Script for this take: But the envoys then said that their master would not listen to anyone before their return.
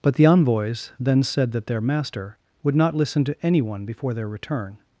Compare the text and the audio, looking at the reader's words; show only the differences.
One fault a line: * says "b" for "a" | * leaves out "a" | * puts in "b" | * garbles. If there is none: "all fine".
all fine